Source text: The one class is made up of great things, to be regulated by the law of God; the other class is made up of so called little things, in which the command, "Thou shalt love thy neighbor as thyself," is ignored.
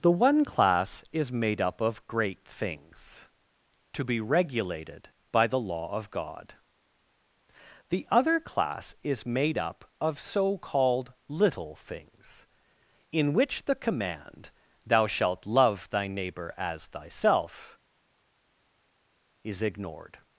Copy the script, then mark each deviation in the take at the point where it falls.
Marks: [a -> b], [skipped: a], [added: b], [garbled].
The one class is made up of great things, to be regulated by the law of God; the other class is made up of so called little things, in which the command, "Thou shalt love thy neighbor as thyself," is ignored.